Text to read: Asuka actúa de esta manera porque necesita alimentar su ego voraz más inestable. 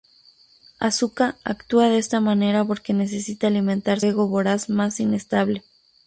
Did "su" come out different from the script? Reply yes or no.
yes